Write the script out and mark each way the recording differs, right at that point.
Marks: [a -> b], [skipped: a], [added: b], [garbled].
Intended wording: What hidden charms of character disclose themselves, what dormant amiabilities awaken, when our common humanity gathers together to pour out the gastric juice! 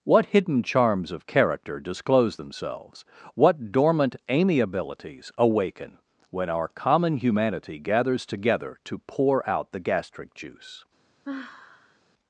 What hidden charms of character disclose themselves, what dormant amiabilities awaken, when our common humanity gathers together to pour out the gastric juice!